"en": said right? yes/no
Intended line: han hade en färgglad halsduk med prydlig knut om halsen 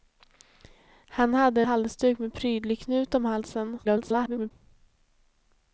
no